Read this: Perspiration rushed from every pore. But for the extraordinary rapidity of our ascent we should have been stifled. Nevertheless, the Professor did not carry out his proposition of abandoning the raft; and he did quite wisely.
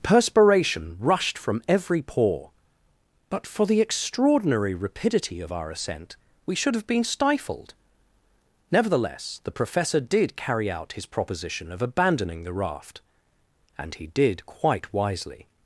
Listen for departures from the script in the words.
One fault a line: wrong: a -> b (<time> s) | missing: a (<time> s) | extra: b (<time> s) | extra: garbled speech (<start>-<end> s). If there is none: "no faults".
missing: not (10.3 s)